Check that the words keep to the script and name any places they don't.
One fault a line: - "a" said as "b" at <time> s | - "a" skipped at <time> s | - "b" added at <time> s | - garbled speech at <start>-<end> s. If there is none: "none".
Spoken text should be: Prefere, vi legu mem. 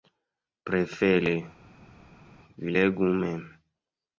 none